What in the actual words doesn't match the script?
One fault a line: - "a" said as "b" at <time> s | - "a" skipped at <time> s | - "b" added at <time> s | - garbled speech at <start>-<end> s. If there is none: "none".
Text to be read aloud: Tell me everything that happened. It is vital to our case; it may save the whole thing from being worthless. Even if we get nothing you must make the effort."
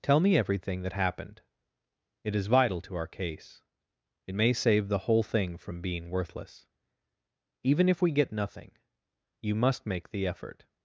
none